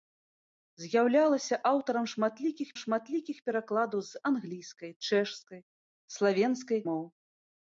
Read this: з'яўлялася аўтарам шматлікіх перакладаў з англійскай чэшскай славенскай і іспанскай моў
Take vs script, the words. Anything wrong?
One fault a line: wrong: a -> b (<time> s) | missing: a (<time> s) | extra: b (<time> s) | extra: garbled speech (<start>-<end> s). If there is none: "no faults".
extra: шматлікіх (2.8 s)
missing: і іспанскай (6.8 s)